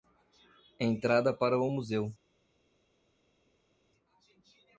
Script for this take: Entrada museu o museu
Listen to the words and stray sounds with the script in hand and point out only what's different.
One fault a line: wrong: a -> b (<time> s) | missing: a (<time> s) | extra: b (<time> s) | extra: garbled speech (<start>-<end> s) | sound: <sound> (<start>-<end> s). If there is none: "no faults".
wrong: museu -> para (1.3 s)